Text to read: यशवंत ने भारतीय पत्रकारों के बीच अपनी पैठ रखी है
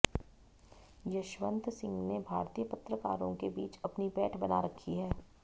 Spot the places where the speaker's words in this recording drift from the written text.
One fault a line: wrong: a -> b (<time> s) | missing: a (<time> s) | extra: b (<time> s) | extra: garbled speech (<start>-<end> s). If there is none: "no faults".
extra: सिंह (1.7 s)
extra: बना (4.4 s)